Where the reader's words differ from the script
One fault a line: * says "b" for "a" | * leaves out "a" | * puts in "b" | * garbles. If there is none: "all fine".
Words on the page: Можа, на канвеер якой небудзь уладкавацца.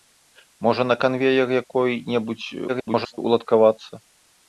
* garbles